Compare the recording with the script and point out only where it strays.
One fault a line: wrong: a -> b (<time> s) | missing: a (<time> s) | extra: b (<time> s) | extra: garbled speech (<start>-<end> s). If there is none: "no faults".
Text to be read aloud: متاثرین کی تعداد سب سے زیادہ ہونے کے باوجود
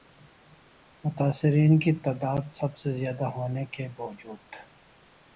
no faults